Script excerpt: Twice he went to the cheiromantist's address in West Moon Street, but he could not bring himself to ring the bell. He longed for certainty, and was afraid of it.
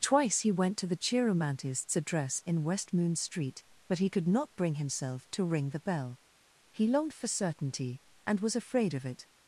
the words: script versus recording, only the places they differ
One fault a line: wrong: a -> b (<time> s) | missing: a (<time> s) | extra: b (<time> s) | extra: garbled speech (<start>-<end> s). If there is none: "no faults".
no faults